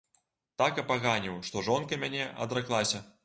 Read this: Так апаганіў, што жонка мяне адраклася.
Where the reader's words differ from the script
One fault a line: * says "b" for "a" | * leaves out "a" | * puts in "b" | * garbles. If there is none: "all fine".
all fine